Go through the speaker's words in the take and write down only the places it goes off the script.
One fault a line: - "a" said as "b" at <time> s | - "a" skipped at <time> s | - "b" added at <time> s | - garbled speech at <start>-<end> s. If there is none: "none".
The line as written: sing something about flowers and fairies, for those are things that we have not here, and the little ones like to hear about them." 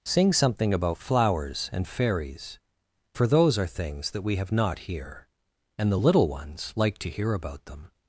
none